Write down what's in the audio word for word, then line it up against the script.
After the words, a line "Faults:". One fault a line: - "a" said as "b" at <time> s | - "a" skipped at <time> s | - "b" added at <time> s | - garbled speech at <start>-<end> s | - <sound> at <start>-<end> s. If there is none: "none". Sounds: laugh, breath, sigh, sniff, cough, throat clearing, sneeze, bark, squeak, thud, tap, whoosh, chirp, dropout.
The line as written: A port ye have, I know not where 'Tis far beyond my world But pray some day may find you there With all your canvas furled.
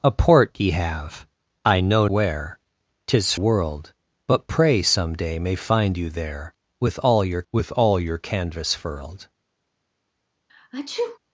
A port ye have, I know where 'Tis world But pray some day may find you there With all your With all your canvas furled.
Faults:
- "not" skipped at 2.1 s
- "far beyond my" skipped at 3.3 s
- "With all your" added at 7.5 s
- sneeze at 10.5-11.2 s